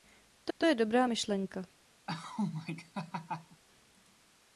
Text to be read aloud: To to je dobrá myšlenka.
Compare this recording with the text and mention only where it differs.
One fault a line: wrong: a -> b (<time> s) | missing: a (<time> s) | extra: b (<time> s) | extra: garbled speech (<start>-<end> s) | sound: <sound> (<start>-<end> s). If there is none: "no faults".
sound: laugh (2.1-3.6 s)